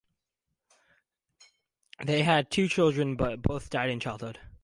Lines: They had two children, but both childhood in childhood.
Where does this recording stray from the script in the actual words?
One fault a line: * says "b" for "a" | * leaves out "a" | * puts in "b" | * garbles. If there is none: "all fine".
* says "died" for "childhood"